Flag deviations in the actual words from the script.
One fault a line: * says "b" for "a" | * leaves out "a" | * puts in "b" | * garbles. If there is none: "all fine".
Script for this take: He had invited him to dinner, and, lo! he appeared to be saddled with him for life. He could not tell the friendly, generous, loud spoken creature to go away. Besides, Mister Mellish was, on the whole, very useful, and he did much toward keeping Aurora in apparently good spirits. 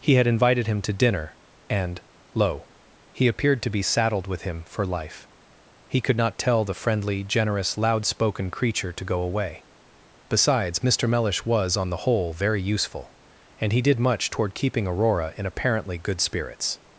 all fine